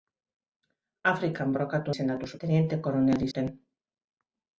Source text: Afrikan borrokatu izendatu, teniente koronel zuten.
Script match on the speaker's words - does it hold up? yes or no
yes